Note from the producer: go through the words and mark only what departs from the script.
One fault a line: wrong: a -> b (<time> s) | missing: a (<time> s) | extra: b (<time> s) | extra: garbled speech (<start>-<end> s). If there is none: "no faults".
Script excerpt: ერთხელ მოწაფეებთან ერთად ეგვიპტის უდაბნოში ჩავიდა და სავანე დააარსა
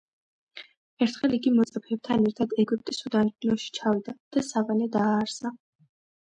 extra: იგი (1.4 s)